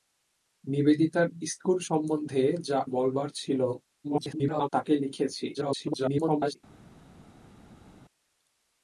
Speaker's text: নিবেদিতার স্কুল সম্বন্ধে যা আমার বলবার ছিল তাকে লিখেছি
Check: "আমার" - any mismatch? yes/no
yes